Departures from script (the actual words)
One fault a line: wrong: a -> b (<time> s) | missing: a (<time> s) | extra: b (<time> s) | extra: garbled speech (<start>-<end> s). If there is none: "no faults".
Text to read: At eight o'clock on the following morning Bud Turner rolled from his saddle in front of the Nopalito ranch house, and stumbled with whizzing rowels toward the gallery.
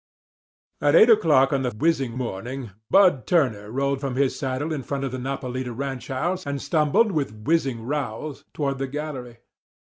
wrong: following -> whizzing (1.8 s)